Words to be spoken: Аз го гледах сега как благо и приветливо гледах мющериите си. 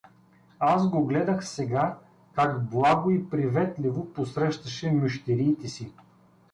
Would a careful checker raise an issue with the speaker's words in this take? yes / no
yes